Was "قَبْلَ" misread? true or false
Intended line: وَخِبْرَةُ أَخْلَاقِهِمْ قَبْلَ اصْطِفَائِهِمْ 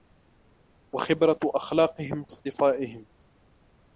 true